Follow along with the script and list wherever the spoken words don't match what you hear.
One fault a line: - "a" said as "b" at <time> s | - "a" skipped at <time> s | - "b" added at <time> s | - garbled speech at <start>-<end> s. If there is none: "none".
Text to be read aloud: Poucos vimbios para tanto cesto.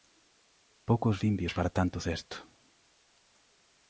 none